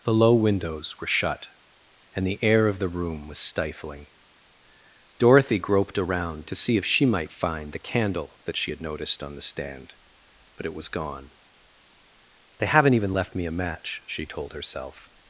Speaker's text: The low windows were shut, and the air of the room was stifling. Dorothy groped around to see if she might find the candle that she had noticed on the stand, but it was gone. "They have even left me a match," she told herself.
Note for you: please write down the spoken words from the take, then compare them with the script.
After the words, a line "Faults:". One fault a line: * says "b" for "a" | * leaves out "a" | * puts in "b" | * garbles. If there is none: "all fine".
The low windows were shut, and the air of the room was stifling. Dorothy groped around to see if she might find the candle that she had noticed on the stand, but it was gone. "They haven't even left me a match," she told herself.
Faults:
* says "haven't" for "have"